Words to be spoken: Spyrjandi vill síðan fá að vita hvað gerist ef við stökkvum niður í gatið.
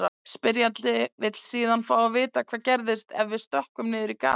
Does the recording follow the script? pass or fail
pass